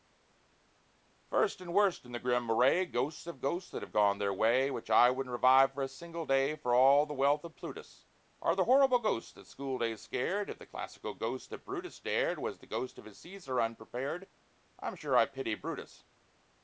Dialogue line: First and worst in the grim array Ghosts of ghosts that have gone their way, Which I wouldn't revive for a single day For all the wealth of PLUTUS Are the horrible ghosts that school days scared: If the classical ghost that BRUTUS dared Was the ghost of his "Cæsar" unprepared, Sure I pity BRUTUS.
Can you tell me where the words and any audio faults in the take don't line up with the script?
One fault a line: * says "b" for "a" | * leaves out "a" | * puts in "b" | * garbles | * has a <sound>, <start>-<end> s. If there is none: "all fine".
* puts in "I'm"